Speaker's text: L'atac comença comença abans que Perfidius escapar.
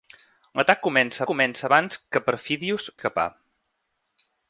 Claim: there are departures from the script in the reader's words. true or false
false